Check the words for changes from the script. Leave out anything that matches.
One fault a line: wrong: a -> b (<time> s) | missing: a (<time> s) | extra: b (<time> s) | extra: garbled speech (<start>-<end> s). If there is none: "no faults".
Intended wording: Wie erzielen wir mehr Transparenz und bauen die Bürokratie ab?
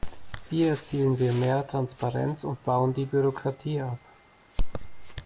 no faults